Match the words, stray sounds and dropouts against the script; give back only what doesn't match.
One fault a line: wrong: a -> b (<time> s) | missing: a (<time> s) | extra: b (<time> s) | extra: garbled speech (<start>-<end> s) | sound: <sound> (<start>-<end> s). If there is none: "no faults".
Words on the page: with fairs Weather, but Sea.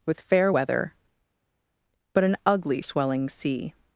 wrong: fairs -> fair (0.2 s)
extra: an ugly swelling (2.2 s)